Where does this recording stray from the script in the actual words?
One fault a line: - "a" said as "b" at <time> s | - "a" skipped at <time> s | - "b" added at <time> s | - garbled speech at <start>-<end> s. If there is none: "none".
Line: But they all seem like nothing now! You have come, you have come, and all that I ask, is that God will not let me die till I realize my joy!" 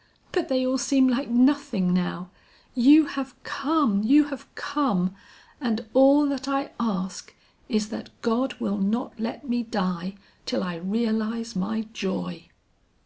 none